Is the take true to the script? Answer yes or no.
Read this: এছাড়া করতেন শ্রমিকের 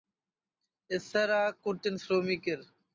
yes